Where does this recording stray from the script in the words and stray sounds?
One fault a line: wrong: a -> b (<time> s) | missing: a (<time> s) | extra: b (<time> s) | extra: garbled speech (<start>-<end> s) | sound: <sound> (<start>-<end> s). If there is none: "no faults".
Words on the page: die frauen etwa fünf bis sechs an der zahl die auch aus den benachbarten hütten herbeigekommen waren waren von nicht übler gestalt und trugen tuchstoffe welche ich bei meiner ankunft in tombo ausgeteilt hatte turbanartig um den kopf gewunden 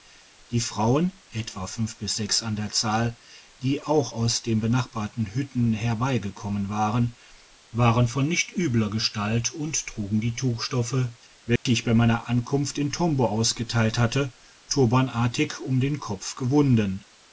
extra: die (10.2 s)
sound: dropout (11.6-11.7 s)